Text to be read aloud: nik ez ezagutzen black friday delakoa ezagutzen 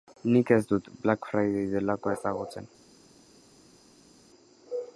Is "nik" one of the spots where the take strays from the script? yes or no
no